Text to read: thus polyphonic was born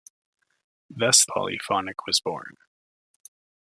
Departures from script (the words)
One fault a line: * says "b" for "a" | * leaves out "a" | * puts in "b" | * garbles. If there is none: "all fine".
all fine